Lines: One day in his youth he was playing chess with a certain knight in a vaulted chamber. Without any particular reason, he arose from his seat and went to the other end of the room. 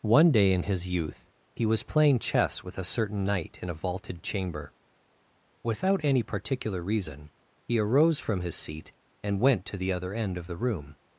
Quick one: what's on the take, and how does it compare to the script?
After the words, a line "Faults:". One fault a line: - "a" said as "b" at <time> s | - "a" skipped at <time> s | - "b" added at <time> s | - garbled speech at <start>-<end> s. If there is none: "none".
One day in his youth he was playing chess with a certain knight in a vaulted chamber. Without any particular reason, he arose from his seat and went to the other end of the room.
Faults:
none